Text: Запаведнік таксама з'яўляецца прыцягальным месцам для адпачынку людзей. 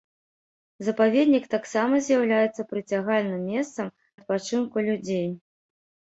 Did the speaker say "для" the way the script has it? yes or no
no